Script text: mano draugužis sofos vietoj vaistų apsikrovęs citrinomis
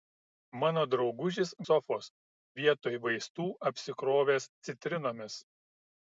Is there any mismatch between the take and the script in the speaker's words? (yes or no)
no